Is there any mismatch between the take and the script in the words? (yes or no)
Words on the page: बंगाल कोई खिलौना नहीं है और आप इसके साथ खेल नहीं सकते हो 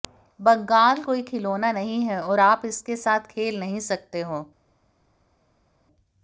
no